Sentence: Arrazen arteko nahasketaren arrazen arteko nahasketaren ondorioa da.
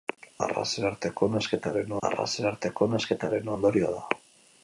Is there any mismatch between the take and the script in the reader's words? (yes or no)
no